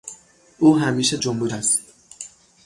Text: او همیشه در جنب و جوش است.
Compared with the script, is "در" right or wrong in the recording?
wrong